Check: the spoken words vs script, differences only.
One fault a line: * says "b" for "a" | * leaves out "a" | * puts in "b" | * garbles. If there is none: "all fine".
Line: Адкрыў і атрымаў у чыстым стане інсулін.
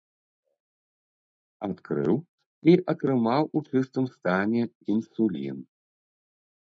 all fine